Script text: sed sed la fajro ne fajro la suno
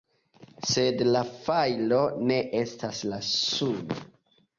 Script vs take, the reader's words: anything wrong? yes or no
yes